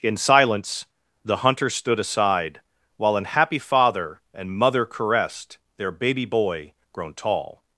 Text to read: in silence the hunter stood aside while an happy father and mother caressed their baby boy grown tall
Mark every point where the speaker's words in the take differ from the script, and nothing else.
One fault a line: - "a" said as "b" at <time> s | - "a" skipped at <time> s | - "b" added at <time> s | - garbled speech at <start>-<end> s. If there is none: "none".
none